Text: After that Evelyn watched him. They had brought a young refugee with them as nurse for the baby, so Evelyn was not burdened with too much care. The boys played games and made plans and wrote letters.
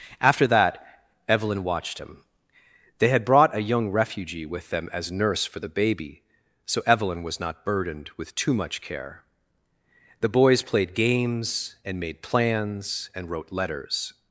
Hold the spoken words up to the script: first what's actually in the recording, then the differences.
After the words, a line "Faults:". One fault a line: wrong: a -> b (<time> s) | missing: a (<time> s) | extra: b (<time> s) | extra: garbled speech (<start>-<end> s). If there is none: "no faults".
After that Evelyn watched him. They had brought a young refugee with them as nurse for the baby, so Evelyn was not burdened with too much care. The boys played games and made plans and wrote letters.
Faults:
no faults